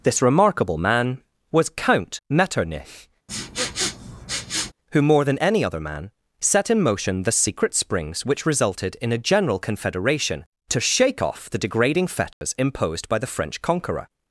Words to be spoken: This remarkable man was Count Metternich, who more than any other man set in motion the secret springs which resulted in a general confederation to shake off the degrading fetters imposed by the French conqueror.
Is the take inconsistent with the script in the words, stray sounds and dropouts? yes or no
yes